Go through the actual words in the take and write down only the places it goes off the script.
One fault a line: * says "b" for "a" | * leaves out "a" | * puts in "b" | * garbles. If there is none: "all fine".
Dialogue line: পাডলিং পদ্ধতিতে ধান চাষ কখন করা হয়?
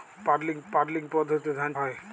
* puts in "পাডলিং"
* leaves out "চাষ কখন করা"